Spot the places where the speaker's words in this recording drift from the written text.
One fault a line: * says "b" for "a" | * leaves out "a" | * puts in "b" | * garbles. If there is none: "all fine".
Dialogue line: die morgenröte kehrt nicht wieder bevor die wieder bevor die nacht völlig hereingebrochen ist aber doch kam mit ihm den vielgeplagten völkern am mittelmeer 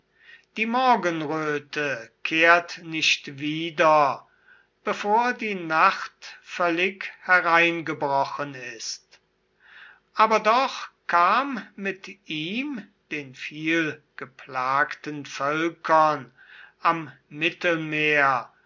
* leaves out "wieder bevor die"